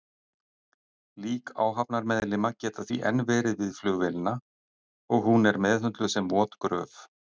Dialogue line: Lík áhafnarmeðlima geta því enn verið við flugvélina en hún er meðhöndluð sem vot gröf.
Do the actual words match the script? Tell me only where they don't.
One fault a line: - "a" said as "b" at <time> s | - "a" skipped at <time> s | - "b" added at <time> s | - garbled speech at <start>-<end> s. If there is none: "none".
- "en" said as "og" at 5.2 s